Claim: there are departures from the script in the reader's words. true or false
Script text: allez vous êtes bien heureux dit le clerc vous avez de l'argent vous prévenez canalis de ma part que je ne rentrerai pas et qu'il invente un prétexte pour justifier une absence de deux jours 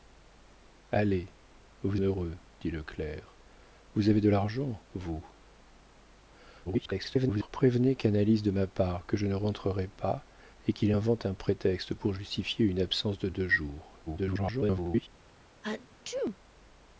true